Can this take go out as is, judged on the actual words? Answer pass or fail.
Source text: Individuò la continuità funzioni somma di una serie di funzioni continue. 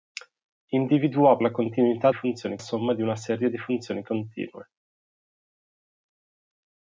pass